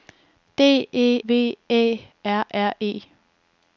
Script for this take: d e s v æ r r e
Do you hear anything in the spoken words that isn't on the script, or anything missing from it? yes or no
yes